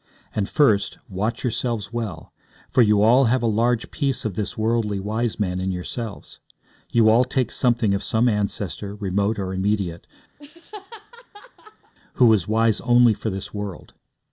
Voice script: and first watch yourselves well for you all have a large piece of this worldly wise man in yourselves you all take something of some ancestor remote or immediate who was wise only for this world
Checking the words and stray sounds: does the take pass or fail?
fail